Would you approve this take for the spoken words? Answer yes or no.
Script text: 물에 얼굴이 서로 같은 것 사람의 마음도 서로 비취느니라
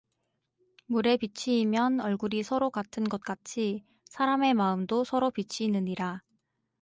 no